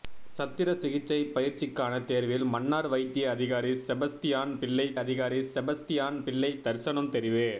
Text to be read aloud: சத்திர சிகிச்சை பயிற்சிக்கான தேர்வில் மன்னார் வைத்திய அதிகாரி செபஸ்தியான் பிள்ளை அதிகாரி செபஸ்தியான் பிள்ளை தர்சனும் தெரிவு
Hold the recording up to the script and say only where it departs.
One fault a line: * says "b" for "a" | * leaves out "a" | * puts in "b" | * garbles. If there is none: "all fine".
all fine